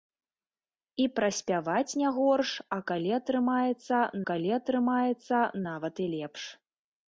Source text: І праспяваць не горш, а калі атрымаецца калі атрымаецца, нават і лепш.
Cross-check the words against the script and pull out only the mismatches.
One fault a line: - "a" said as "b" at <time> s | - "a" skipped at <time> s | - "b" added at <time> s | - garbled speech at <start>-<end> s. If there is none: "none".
none